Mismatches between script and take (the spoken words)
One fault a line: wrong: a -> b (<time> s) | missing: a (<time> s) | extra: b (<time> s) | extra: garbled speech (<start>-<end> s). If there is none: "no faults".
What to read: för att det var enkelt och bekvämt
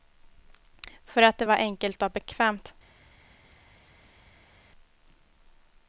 no faults